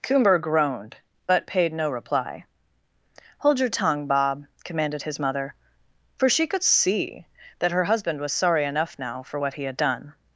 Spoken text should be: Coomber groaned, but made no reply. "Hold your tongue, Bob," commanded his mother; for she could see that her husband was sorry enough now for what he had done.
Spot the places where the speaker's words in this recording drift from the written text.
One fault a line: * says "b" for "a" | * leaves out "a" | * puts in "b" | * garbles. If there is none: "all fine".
* says "paid" for "made"